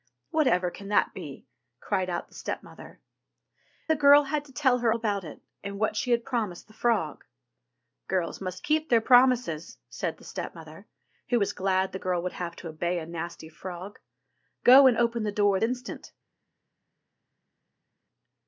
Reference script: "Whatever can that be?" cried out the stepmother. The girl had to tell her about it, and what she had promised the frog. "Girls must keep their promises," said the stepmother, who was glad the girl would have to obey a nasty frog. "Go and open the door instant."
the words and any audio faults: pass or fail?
pass